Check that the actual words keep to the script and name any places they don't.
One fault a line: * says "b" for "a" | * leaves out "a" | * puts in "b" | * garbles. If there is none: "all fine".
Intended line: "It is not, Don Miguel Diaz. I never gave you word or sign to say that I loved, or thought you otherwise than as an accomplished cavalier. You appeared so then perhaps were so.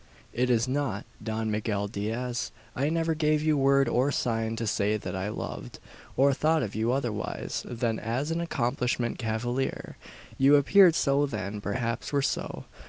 * puts in "of"